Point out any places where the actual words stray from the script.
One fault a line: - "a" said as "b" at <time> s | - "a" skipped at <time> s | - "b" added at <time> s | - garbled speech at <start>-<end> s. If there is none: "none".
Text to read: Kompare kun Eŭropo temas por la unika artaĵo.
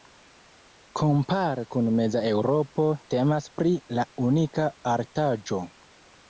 - "meza" added at 2.0 s
- "por" said as "pri" at 3.6 s